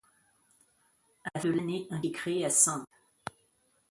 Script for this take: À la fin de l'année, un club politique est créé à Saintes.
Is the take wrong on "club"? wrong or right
wrong